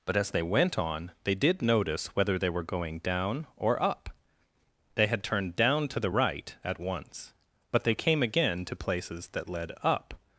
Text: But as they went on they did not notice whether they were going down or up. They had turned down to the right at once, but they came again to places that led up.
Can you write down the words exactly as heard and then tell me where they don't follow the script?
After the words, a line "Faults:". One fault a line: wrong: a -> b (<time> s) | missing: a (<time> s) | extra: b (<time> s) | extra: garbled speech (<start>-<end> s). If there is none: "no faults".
But as they went on they did notice whether they were going down or up. They had turned down to the right at once, but they came again to places that led up.
Faults:
missing: not (1.6 s)